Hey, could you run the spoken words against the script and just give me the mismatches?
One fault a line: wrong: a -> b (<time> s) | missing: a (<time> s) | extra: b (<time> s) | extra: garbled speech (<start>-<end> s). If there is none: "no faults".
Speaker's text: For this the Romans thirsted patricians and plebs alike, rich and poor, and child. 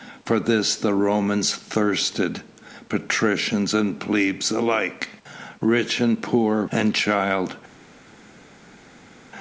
no faults